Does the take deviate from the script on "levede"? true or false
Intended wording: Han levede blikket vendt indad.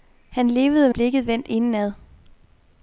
false